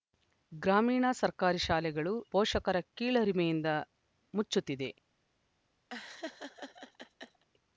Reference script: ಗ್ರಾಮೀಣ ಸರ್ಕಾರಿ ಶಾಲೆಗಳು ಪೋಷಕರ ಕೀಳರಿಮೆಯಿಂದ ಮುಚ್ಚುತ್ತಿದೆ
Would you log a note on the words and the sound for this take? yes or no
yes